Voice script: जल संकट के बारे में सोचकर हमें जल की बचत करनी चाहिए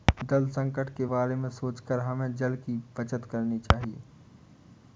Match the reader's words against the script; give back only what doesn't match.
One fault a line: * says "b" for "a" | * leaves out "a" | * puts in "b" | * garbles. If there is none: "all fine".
all fine